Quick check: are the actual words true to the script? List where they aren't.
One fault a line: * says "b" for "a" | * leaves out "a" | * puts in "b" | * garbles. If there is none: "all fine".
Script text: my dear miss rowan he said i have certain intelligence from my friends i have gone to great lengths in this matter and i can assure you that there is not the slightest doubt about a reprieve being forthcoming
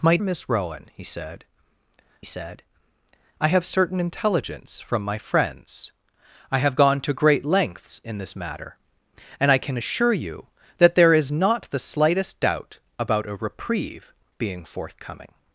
* leaves out "dear"
* puts in "said"